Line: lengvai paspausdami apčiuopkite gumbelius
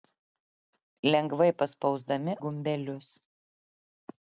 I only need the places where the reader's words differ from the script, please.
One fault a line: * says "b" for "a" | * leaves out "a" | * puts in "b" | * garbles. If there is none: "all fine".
* leaves out "apčiuopkite"